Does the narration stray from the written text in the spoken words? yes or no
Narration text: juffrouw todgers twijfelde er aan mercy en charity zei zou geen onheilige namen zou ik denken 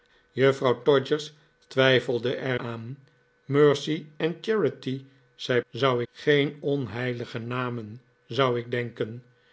no